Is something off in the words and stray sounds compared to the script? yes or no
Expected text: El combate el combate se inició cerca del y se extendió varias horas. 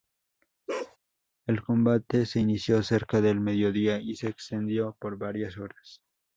yes